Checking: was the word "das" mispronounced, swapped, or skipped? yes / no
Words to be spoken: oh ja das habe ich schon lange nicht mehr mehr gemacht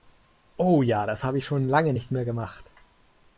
no